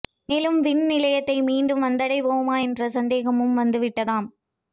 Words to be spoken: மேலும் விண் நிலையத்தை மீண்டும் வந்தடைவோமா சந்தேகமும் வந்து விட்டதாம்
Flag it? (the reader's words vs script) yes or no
yes